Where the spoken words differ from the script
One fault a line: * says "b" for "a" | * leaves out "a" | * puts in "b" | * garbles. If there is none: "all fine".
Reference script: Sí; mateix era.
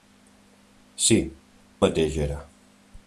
all fine